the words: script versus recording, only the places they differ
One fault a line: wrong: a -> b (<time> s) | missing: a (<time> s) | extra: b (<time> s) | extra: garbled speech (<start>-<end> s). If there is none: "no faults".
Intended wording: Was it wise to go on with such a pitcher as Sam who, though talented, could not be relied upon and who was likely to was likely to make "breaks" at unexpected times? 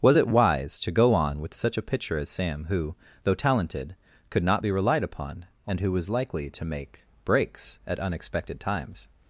missing: was likely to (6.7 s)